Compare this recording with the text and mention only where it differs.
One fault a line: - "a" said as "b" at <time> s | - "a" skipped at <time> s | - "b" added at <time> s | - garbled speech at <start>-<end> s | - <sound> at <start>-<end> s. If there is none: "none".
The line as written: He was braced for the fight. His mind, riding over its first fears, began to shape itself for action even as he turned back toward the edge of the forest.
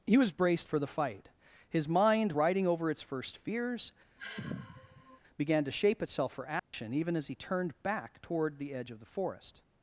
- sigh at 4.2-5.2 s
- dropout at 6.6-6.7 s